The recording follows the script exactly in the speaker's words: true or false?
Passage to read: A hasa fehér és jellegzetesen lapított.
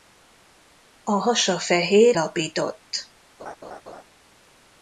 false